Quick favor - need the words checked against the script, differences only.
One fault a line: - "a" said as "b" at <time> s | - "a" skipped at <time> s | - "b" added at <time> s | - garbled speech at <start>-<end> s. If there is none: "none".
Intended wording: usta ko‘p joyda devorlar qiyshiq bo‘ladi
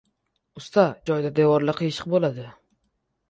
- "ko‘p" skipped at 0.8 s